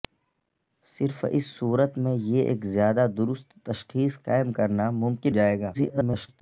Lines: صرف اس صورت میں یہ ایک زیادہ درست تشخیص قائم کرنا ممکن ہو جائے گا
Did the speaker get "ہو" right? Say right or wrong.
wrong